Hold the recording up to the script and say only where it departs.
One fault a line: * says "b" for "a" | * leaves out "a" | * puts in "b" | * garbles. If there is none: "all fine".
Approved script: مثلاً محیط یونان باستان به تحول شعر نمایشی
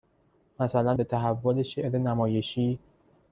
* leaves out "محیط یونان باستان"